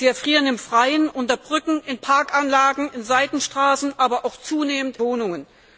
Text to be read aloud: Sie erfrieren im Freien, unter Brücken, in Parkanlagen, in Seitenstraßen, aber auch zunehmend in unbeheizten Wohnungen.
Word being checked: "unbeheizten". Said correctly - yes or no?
no